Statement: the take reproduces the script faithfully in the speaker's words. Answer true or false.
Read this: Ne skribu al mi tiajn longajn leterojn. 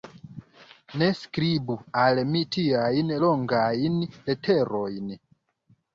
true